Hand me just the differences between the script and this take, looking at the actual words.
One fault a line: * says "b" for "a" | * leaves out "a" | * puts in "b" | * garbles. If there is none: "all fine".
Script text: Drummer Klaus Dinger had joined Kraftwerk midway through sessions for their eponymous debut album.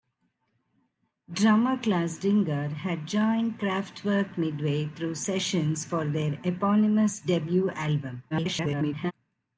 * garbles